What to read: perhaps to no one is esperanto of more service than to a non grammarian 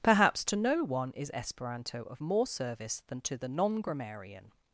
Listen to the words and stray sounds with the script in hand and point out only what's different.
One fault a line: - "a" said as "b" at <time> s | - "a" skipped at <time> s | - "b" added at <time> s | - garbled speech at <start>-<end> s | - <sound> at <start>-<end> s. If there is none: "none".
- "a" said as "the" at 3.4 s